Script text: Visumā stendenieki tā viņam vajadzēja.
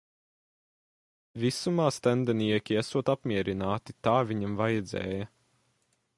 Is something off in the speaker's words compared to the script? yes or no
yes